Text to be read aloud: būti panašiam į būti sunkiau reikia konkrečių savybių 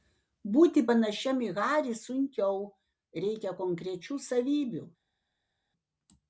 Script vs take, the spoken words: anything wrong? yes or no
yes